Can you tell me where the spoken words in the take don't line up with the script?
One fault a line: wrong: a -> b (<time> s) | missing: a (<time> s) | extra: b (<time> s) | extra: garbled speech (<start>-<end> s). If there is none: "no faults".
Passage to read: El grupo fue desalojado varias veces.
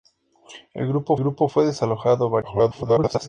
extra: grupo (1.2 s)
extra: garbled speech (2.4-3.3 s)